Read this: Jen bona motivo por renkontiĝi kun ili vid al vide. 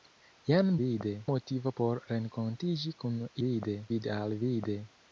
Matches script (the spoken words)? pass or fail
fail